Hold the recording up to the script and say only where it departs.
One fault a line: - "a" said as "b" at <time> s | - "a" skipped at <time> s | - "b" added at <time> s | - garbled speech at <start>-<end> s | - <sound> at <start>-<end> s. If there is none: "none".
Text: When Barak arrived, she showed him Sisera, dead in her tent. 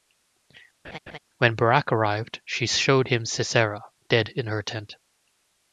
- laugh at 0.8-1.2 s